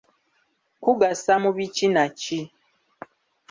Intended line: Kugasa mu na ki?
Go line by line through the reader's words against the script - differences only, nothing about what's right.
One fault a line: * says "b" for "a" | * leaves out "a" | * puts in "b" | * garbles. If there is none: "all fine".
* puts in "biki"